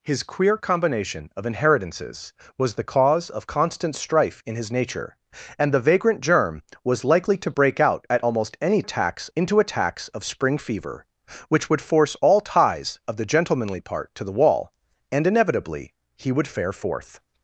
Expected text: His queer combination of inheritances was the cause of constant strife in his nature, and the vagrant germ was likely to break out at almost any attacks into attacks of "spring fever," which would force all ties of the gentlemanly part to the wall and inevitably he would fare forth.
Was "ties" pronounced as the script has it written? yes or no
yes